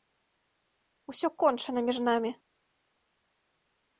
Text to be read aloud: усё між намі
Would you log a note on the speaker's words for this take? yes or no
yes